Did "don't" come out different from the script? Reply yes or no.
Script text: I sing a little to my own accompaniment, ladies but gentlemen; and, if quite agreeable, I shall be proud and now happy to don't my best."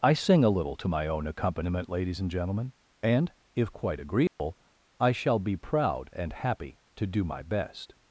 yes